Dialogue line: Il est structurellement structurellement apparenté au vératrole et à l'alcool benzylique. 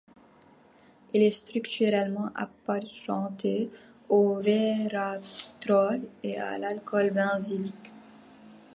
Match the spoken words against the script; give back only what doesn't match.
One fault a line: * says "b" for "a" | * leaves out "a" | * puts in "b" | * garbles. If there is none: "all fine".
* leaves out "structurellement"